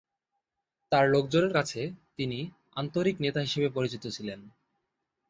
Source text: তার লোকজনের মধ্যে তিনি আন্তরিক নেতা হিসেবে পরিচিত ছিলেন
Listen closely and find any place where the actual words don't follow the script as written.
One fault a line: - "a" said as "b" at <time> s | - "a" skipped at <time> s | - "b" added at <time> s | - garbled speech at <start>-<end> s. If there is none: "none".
- "মধ্যে" said as "কাছে" at 1.5 s